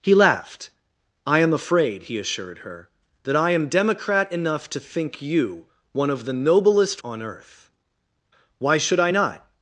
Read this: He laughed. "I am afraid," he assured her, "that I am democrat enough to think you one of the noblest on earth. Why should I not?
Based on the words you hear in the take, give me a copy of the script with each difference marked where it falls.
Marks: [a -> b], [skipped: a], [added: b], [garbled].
He laughed. "I am afraid," he assured her, "that I am democrat enough to think you one of the noblest on earth. Why should I not?